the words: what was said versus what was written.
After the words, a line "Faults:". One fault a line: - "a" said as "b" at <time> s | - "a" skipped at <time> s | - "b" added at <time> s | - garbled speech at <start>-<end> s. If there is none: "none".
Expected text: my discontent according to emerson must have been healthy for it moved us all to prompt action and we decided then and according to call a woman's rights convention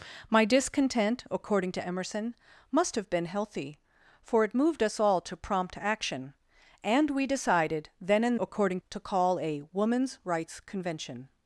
my discontent according to emerson must have been healthy for it moved us all to prompt action and we decided then and according to call a woman's rights convention
Faults:
none